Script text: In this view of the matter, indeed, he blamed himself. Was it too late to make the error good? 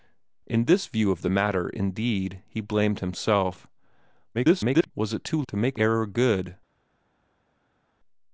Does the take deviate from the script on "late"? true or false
true